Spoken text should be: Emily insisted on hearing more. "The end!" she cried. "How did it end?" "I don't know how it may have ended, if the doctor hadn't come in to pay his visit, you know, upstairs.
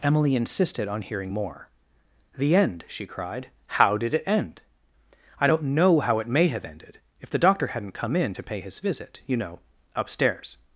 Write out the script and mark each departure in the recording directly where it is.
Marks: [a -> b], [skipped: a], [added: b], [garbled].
Emily insisted on hearing more. "The end!" she cried. "How did it end?" "I don't know how it may have ended, if the doctor hadn't come in to pay his visit, you know, upstairs.